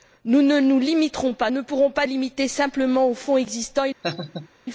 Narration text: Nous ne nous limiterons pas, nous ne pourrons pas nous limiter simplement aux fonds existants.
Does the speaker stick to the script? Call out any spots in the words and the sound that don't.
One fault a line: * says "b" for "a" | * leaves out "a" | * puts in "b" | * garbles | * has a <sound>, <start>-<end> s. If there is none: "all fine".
* leaves out "nous"
* leaves out "nous"
* has a laugh, 4.0-4.5 s